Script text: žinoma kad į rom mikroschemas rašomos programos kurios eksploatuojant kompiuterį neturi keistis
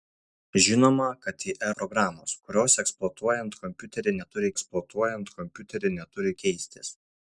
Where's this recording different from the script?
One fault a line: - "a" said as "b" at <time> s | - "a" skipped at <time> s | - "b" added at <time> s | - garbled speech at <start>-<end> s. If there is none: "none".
- "rom mikroschemas rašomos programos kurios" said as "programos kurios eksploatuojant kompiuterį neturi" at 1.8 s